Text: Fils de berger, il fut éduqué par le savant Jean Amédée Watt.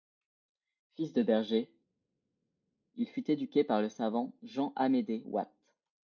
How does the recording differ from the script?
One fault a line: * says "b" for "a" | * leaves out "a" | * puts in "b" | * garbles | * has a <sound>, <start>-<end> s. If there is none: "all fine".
all fine